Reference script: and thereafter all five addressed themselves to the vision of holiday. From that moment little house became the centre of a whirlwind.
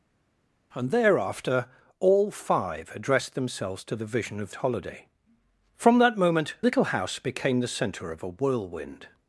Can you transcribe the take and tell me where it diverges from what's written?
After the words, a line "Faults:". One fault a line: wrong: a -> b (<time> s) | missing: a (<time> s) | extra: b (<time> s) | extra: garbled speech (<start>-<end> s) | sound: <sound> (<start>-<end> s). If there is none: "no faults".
and thereafter all five addressed themselves to the vision of holiday. From that moment little house became the centre of a whirlwind.
Faults:
no faults